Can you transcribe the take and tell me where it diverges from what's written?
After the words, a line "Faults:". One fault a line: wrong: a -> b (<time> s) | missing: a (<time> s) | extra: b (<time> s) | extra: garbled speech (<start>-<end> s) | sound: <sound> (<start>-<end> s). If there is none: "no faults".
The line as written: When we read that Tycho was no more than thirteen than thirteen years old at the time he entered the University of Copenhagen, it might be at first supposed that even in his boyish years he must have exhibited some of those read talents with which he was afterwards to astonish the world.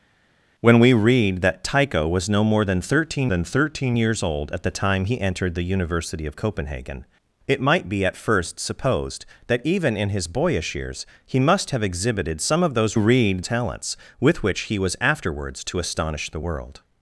When we read that Tycho was no more than thirteen than thirteen years old at the time he entered the University of Copenhagen, it might be at first supposed that even in his boyish years he must have exhibited some of those read talents with which he was afterwards to astonish the world.
Faults:
no faults